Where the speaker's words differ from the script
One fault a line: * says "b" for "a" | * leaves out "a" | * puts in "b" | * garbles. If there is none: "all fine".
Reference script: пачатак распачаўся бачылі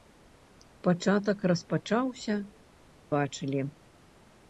all fine